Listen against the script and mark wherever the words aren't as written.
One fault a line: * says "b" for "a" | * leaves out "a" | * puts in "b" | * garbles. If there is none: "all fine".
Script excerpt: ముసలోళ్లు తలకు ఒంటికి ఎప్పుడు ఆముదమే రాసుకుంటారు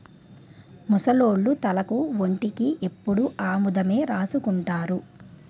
all fine